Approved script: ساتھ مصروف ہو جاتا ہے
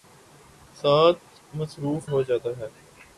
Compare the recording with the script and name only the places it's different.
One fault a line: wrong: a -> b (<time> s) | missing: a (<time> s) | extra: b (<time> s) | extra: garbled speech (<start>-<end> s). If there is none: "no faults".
no faults